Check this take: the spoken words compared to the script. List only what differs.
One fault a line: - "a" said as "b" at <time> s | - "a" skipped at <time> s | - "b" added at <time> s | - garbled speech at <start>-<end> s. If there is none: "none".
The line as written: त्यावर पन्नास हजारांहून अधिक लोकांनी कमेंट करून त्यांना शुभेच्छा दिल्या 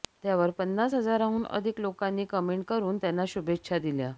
none